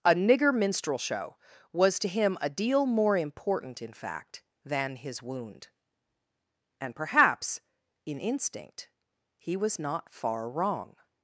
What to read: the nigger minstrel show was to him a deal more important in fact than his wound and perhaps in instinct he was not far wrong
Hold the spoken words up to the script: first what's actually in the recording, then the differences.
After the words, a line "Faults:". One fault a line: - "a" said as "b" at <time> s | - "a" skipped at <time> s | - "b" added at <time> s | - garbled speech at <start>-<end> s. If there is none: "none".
a nigger minstrel show was to him a deal more important in fact than his wound and perhaps in instinct he was not far wrong
Faults:
- "the" said as "a" at 0.0 s